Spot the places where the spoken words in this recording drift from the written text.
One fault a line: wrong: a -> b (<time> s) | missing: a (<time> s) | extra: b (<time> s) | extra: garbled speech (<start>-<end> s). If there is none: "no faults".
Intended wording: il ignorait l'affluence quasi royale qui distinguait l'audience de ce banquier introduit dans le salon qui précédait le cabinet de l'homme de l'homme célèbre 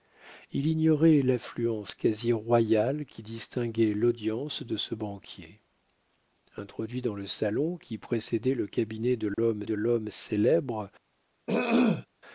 no faults